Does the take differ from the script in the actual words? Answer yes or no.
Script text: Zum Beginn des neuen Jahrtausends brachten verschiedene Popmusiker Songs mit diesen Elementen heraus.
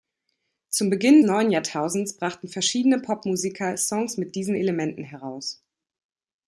yes